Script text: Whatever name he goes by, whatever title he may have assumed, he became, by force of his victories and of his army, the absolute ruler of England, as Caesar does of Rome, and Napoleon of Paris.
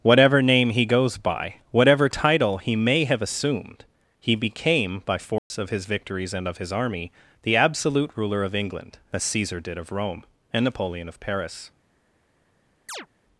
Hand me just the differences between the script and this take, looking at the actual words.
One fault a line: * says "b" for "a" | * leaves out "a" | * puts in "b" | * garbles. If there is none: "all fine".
* says "did" for "does"